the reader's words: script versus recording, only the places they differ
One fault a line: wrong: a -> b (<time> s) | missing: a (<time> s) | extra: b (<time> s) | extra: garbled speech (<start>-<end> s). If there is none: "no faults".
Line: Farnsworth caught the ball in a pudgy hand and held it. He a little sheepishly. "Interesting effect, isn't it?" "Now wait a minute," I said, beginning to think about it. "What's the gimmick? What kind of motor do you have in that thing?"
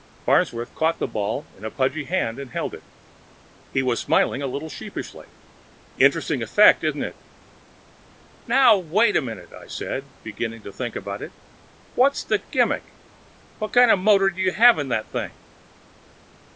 extra: was smiling (3.8 s)